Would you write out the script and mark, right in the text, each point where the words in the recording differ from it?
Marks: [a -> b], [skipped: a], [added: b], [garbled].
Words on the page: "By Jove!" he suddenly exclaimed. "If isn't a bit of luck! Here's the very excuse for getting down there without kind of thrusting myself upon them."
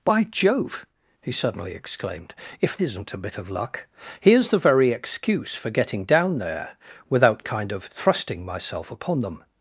"By Jove!" he suddenly exclaimed. "If isn't a bit of luck! Here's the very excuse for getting down there without kind of thrusting myself upon them."